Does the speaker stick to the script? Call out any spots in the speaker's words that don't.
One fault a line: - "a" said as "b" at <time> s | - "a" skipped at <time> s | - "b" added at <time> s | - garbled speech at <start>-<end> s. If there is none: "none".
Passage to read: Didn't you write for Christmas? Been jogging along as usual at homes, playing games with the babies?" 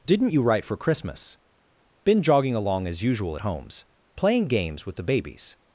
none